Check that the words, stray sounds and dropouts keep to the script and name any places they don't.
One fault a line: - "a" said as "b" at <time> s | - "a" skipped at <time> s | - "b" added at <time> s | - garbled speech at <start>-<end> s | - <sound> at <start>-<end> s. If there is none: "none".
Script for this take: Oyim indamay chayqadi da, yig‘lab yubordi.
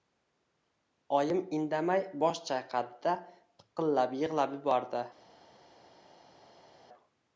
- "bosh" added at 2.2 s
- "piqillab" added at 3.6 s